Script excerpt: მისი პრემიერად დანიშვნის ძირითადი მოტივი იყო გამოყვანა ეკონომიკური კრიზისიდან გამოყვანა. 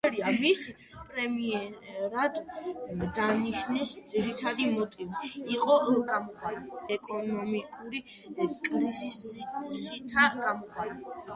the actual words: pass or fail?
pass